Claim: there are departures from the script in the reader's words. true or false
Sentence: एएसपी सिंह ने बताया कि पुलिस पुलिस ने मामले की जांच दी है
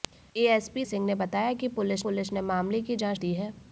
false